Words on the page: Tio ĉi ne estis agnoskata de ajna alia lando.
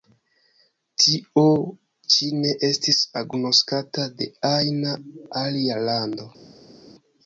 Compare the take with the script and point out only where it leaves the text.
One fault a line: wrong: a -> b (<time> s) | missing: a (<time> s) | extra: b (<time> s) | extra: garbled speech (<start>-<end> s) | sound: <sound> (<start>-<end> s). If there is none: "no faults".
no faults